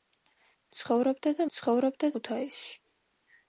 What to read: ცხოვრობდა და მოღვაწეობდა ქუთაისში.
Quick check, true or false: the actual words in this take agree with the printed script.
false